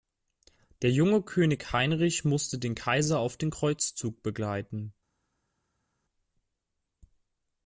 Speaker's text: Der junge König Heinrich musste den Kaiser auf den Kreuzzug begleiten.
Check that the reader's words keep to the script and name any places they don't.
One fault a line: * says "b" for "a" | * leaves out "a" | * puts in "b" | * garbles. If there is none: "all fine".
all fine